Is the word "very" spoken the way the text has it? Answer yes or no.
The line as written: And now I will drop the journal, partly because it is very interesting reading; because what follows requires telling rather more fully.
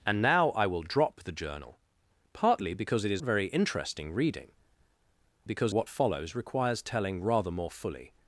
yes